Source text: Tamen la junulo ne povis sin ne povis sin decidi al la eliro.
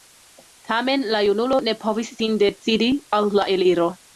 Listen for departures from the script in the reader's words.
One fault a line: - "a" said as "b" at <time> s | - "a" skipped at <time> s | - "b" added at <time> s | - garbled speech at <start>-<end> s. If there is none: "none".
- "ne povis sin" skipped at 2.4 s